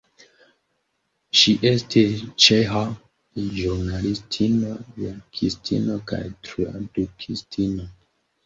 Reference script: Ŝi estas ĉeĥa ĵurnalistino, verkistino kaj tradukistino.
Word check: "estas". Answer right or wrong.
wrong